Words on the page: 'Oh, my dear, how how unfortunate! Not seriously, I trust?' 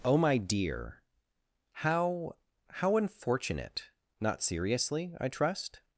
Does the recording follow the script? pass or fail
pass